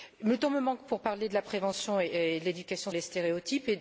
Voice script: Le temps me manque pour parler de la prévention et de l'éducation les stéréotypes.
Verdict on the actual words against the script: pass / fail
pass